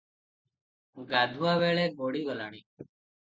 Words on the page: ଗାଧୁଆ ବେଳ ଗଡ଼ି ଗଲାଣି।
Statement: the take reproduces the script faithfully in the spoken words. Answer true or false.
true